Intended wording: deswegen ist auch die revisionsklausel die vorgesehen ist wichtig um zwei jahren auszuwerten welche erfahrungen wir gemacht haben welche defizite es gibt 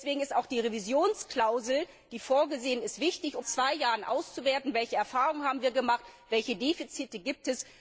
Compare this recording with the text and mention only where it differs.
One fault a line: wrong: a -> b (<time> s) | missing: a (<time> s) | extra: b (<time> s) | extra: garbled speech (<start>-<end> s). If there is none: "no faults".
no faults